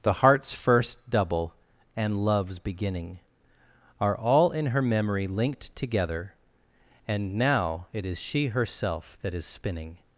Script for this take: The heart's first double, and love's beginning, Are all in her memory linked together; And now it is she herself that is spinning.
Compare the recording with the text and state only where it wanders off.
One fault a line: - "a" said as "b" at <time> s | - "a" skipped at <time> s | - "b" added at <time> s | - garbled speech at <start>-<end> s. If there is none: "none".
none